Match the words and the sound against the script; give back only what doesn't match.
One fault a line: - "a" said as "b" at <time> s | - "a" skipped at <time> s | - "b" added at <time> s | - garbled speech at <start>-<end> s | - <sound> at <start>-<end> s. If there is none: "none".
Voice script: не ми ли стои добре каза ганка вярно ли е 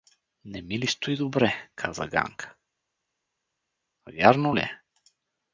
none